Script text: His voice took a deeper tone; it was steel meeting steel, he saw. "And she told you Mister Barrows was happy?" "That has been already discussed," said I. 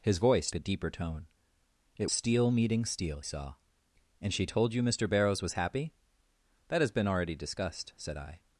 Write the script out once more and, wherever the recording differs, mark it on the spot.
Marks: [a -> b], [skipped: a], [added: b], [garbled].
His voice [skipped: took] a deeper tone; it [skipped: was] steel meeting steel, [skipped: he] saw. "And she told you Mister Barrows was happy?" "That has been already discussed," said I.